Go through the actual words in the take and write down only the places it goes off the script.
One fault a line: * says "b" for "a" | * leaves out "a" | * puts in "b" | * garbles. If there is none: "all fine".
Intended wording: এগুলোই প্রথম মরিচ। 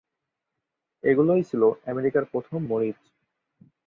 * puts in "ছিল আমেরিকার"